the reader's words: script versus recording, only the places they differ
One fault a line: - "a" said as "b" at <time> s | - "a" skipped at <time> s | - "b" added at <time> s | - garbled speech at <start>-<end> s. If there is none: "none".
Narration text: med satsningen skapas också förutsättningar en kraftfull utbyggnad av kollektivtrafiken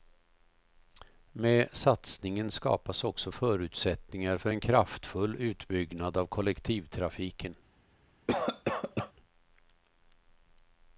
- "för" added at 4.4 s